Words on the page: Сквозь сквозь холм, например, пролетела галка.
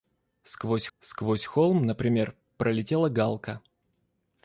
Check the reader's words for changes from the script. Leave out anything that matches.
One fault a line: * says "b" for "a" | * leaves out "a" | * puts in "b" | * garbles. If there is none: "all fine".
all fine